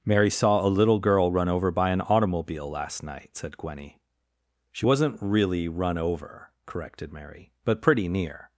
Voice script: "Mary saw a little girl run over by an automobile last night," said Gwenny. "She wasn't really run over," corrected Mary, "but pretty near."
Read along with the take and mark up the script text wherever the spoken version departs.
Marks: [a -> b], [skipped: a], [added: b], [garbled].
"Mary saw a little girl run over by an automobile last night," said Gwenny. "She wasn't really run over," corrected Mary, "but pretty near."